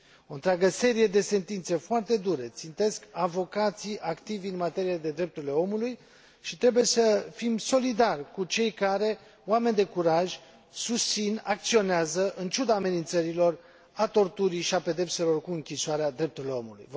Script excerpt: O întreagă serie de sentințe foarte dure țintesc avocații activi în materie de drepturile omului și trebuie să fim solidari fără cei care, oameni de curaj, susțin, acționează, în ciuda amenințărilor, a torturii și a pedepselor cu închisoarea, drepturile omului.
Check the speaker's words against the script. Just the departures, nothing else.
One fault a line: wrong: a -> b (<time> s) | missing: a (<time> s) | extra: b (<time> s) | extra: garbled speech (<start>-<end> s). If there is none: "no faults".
wrong: fără -> cu (8.3 s)